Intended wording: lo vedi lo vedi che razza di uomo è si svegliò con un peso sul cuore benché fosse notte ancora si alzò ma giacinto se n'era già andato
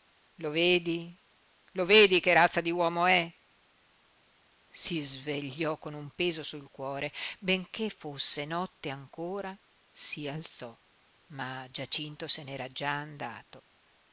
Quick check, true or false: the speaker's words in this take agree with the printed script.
true